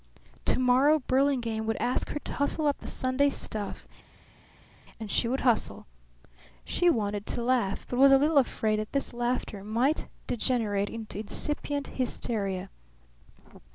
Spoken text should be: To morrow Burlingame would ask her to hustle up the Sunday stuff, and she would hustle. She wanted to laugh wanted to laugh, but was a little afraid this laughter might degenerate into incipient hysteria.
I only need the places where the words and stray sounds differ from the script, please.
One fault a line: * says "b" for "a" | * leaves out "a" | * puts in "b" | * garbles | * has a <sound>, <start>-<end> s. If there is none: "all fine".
* leaves out "wanted to laugh"
* puts in "that"